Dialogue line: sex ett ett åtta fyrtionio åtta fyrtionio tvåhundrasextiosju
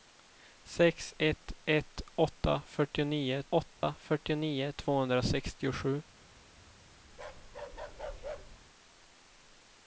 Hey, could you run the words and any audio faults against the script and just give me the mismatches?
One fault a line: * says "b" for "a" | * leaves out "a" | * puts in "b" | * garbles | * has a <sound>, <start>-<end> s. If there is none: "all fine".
* has a dropout, 3.8-3.8 s
* has a bark, 7.1-8.6 s